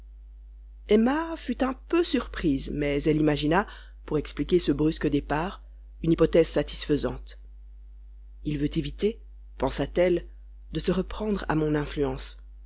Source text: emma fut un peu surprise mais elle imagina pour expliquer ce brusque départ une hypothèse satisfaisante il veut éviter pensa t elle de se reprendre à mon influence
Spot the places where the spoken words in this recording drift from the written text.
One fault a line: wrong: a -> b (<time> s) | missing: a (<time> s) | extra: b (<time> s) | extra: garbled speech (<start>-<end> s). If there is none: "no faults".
no faults